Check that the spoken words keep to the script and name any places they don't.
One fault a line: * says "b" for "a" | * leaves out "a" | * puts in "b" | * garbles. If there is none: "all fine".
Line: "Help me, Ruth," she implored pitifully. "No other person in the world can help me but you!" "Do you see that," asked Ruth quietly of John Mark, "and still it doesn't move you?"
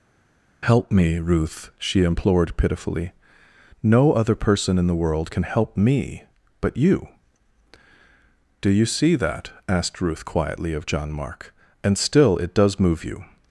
* says "does" for "doesn't"